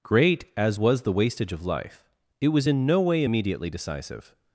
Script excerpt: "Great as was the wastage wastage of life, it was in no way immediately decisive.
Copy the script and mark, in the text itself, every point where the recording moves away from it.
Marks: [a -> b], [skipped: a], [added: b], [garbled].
"Great as was the wastage [skipped: wastage] of life, it was in no way immediately decisive.